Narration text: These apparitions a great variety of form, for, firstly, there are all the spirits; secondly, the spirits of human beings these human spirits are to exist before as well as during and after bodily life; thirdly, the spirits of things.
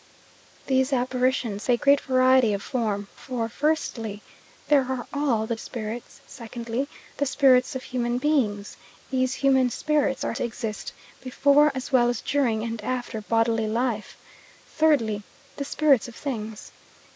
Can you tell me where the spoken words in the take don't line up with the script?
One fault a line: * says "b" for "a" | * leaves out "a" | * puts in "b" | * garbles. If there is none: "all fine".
all fine